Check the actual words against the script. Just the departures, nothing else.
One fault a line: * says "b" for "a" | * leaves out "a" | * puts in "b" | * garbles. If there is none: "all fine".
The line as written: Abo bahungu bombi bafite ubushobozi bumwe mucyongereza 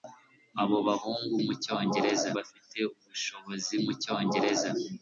* says "mucyongereza" for "bombi"
* leaves out "bumwe"